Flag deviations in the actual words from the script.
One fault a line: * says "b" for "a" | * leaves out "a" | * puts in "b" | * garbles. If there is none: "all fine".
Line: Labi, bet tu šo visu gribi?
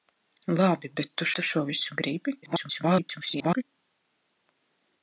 * puts in "tu"
* garbles